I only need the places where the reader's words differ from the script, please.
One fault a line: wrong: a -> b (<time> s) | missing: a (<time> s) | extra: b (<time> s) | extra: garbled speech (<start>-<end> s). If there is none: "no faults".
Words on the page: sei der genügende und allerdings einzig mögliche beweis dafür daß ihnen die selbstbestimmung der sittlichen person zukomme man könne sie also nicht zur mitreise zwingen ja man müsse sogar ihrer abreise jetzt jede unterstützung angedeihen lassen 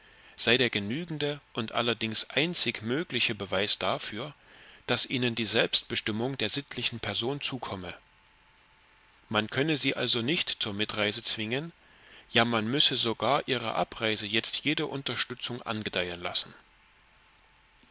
no faults